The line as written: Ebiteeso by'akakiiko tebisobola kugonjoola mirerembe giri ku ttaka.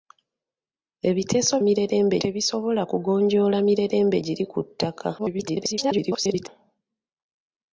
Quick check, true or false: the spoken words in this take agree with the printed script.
false